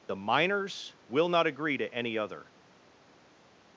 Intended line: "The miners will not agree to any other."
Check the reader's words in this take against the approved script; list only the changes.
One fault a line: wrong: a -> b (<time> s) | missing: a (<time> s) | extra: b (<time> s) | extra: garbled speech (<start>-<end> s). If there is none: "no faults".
no faults